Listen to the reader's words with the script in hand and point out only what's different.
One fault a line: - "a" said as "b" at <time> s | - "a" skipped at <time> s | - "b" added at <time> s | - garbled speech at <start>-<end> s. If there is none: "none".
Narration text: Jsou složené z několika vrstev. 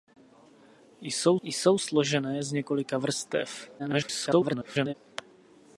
- "jsou" added at 1.4 s
- garbled speech at 3.8-4.9 s